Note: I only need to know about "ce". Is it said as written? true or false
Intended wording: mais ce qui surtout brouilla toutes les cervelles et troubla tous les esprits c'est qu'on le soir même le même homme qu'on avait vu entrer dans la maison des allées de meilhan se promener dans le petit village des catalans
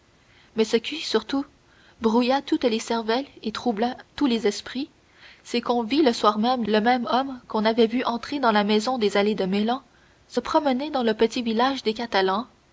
true